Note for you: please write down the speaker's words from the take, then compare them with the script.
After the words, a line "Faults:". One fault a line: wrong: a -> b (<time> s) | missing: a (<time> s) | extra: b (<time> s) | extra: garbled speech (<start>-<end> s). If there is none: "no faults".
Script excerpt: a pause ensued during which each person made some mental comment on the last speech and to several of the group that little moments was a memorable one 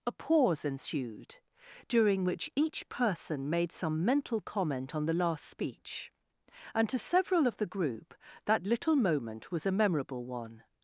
a pause ensued during which each person made some mental comment on the last speech and to several of the group that little moment was a memorable one
Faults:
wrong: moments -> moment (9.0 s)